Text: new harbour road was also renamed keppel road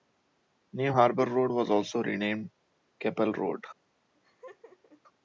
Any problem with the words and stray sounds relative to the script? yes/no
yes